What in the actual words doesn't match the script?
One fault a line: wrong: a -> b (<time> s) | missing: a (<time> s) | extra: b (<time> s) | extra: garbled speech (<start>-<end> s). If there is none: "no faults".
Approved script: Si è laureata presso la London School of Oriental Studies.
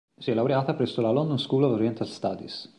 no faults